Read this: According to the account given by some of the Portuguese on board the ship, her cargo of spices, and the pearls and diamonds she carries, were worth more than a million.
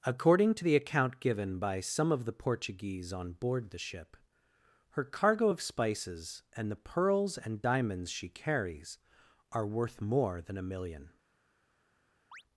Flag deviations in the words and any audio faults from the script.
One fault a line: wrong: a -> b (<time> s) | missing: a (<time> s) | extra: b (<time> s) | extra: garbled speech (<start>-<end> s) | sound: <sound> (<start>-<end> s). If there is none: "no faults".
wrong: were -> are (9.5 s)
sound: chirp (12.3-12.4 s)